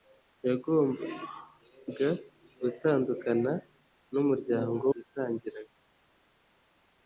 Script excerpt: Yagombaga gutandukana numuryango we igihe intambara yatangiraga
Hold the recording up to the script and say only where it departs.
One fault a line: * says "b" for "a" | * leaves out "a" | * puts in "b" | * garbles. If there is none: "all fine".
* leaves out "we igihe intambara"